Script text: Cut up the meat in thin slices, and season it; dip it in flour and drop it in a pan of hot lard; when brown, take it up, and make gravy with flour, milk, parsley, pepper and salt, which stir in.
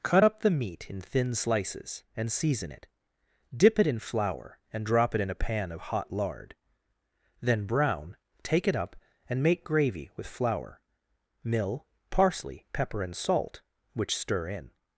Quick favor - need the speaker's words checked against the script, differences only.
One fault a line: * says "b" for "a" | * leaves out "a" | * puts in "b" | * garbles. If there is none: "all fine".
* says "then" for "when"
* says "mill" for "milk"